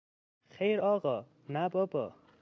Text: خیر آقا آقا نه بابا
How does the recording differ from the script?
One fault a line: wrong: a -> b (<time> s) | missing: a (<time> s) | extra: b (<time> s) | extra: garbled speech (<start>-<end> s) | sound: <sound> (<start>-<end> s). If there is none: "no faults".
missing: آقا (1.3 s)